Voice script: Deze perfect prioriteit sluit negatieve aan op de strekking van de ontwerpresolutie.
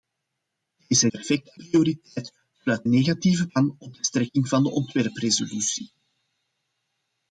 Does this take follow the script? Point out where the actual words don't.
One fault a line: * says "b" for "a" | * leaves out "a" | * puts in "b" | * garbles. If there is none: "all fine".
all fine